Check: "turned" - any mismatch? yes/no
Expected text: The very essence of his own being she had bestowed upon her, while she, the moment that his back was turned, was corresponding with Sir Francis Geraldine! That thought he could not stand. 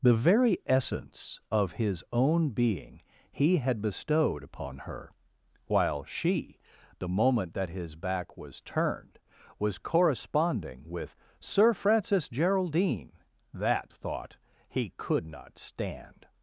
no